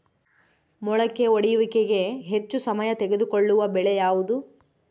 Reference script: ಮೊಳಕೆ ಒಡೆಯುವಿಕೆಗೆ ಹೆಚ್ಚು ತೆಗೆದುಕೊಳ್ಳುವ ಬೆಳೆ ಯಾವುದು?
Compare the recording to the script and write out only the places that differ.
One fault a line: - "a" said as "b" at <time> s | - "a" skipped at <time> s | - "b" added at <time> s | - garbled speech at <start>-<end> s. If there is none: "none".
- "ಸಮಯ" added at 2.6 s